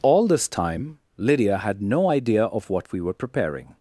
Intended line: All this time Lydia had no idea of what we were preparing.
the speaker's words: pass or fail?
pass